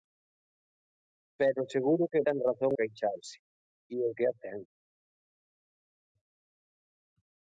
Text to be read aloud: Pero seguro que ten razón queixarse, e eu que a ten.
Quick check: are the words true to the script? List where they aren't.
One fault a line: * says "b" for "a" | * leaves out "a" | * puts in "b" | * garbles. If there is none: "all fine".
all fine